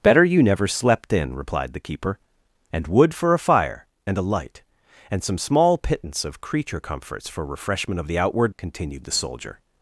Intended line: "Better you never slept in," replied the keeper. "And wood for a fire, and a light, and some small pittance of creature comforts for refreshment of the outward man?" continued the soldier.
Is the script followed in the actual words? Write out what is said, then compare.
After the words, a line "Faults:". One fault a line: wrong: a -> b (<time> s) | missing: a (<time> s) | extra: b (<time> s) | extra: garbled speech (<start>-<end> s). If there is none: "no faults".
"Better you never slept in," replied the keeper. "And wood for a fire, and a light, and some small pittance of creature comforts for refreshment of the outward?" continued the soldier.
Faults:
missing: man (8.6 s)